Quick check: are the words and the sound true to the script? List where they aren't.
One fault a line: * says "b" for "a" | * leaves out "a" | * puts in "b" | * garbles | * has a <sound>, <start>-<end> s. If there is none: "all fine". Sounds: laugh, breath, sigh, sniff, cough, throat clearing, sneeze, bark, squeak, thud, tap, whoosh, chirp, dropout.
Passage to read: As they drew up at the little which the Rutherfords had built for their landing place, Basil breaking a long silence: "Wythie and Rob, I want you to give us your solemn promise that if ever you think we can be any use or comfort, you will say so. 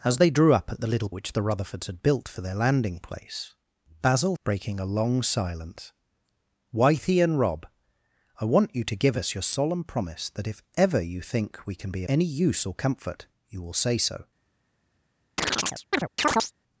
* has a chirp, 15.4-16.5 s